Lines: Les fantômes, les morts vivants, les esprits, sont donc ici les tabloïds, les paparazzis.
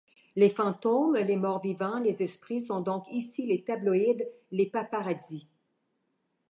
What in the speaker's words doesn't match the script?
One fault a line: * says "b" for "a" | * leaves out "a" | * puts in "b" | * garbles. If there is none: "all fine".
all fine